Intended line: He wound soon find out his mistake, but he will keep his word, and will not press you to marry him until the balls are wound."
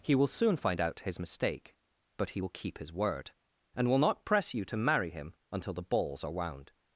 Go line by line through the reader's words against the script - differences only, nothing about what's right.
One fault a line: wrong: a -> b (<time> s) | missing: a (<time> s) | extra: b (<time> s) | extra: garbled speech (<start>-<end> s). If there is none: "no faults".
wrong: wound -> will (0.1 s)